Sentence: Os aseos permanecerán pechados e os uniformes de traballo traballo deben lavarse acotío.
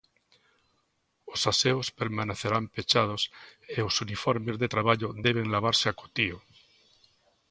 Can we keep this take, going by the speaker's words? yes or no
no